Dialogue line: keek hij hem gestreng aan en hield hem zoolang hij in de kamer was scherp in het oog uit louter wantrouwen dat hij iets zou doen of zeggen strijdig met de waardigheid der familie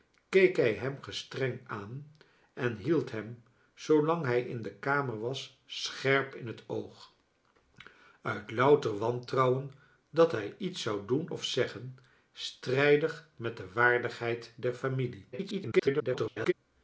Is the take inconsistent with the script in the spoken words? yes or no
yes